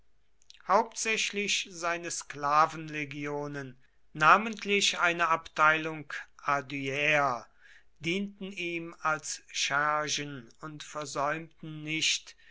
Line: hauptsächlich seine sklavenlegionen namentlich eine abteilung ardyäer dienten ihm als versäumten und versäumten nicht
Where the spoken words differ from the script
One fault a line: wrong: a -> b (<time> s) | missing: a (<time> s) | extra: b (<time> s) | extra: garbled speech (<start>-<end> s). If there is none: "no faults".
wrong: versäumten -> schergen (9.5 s)